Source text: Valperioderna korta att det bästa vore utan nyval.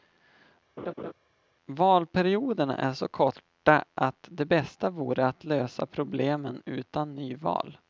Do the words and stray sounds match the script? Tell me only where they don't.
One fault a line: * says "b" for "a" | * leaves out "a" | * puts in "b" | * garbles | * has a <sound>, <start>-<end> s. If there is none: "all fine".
* has a laugh, 0.8-1.1 s
* puts in "är så"
* puts in "att lösa problemen"